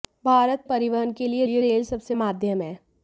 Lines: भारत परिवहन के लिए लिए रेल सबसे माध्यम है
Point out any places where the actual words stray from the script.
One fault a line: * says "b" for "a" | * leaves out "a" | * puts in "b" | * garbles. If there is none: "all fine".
all fine